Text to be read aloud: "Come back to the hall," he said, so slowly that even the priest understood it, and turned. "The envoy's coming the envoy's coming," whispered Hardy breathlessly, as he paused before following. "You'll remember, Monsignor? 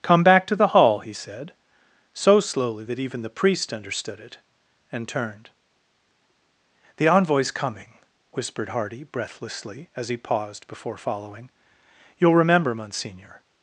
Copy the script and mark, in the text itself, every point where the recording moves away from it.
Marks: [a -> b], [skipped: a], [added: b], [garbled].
"Come back to the hall," he said, so slowly that even the priest understood it, and turned. "The envoy's coming [skipped: the envoy's coming,"] whispered Hardy breathlessly, as he paused before following. "You'll remember, Monsignor?